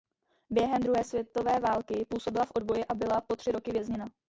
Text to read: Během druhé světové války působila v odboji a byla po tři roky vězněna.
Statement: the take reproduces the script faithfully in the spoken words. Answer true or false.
true